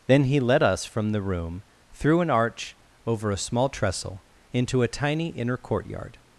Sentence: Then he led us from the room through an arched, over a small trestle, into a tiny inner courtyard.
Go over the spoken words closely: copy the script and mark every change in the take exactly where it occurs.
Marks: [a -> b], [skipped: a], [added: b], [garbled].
Then he led us from the room through an [arched, -> arch] over a small trestle, into a tiny inner courtyard.